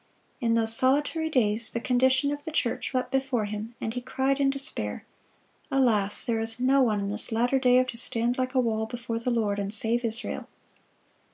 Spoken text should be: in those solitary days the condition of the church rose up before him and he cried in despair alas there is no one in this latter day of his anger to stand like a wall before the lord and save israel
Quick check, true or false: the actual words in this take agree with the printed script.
false